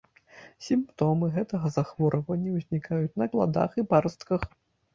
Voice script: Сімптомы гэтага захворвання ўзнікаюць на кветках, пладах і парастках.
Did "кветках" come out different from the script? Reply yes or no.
yes